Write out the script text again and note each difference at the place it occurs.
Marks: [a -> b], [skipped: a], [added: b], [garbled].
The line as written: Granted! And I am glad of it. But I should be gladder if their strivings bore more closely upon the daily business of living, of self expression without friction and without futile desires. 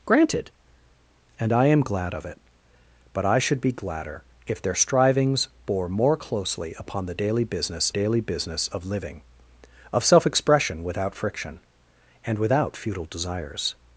Granted! And I am glad of it. But I should be gladder if their strivings bore more closely upon the daily business [added: daily business] of living, of self expression without friction and without futile desires.